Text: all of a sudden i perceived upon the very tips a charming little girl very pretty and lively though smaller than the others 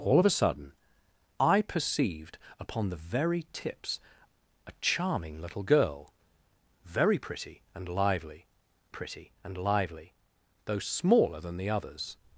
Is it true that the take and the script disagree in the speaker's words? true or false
true